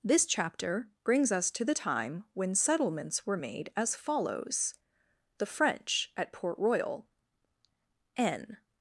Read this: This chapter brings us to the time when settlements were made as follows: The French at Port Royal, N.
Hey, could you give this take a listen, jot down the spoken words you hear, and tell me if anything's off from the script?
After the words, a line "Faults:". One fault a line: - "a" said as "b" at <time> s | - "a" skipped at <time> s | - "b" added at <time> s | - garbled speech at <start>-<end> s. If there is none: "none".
This chapter brings us to the time when settlements were made as follows: The French at Port Royal, N.
Faults:
none